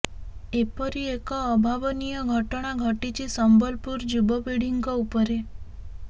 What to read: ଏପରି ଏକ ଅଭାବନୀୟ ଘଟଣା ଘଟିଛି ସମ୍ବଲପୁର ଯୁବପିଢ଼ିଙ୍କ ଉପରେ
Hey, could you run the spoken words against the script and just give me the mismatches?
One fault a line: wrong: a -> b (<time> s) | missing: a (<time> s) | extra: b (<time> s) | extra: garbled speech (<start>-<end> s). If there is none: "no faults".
no faults